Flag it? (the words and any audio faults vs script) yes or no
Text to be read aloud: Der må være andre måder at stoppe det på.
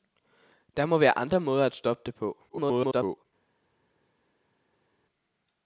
yes